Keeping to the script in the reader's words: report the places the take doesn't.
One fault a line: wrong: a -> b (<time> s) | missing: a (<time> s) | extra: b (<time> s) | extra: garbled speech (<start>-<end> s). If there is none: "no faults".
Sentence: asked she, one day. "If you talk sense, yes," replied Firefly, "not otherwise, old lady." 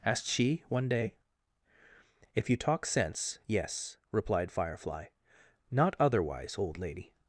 no faults